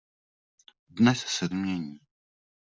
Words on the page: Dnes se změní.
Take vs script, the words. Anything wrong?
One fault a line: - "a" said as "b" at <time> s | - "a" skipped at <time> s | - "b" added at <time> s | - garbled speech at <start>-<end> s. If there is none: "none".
none